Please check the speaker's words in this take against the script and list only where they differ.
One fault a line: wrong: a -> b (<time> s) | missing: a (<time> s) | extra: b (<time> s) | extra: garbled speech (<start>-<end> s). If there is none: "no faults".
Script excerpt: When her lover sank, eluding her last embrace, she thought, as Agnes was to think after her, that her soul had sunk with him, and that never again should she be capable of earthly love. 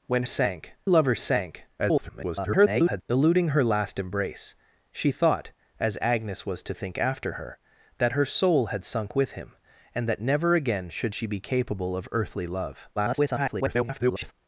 wrong: her -> sank (0.2 s)
extra: garbled speech (1.8-3.0 s)
extra: garbled speech (13.0-14.3 s)